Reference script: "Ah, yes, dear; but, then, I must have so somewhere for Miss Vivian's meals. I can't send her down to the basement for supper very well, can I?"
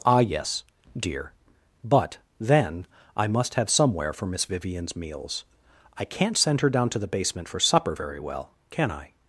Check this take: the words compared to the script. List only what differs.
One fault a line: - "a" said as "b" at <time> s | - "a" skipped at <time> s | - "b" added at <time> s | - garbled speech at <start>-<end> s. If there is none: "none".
- "so" skipped at 3.7 s